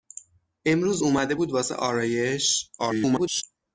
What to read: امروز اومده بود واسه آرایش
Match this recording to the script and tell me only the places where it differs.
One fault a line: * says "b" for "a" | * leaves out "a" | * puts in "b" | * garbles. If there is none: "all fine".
* garbles